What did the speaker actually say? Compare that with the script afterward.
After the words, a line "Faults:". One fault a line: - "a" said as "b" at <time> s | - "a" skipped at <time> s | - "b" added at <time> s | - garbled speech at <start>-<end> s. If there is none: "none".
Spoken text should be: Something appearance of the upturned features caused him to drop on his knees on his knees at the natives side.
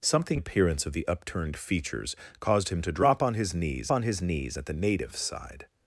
Something appearance of the upturned features caused him to drop on his knees on his knees at the natives side.
Faults:
none